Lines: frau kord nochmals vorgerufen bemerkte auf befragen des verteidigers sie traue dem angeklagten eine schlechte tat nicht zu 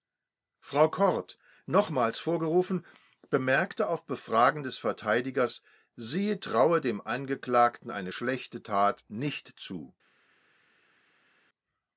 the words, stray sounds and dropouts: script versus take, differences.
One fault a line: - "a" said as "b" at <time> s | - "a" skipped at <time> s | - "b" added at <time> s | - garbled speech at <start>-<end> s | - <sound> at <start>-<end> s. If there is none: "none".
none